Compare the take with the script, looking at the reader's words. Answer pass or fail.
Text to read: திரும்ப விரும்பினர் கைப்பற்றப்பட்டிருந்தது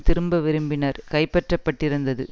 pass